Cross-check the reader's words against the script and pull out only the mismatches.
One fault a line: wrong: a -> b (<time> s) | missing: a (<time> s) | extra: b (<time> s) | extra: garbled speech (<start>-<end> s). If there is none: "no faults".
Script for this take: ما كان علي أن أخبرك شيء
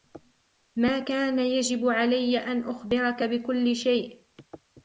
extra: يجب (1.4 s)
extra: بكل (3.2 s)